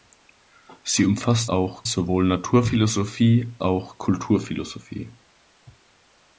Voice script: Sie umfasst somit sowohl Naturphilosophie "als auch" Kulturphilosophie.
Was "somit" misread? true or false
true